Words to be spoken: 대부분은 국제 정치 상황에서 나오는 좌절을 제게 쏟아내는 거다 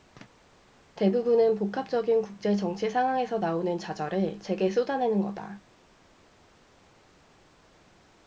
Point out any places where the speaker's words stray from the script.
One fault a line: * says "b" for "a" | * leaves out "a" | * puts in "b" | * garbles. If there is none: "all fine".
* puts in "복합적인"